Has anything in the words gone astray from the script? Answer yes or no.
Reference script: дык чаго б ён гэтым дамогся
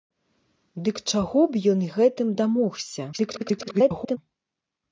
yes